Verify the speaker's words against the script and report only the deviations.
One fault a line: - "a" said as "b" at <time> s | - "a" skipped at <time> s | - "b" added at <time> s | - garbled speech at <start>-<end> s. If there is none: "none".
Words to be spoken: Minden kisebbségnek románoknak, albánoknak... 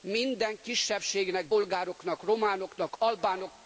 - "bolgároknak" added at 1.5 s